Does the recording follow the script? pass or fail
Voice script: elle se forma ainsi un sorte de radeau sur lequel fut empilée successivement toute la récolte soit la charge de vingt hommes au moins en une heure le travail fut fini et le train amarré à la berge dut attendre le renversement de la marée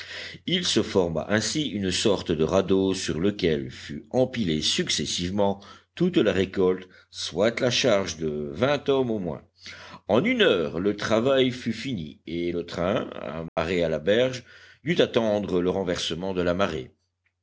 fail